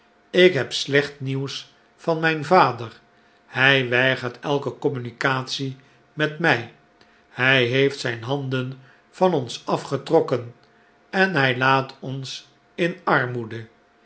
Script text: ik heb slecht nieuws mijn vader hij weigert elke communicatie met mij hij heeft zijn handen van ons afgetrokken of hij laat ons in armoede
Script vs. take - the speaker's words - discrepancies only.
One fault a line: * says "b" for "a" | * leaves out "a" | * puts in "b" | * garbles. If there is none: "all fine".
* puts in "van"
* says "en" for "of"